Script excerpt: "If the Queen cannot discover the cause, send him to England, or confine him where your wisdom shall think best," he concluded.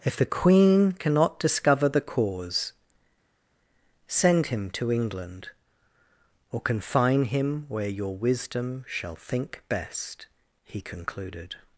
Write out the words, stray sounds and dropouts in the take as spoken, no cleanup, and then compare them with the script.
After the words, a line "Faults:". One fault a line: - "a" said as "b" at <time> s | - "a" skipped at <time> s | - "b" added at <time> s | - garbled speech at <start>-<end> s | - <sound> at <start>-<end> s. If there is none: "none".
"If the Queen cannot discover the cause, send him to England, or confine him where your wisdom shall think best," he concluded.
Faults:
none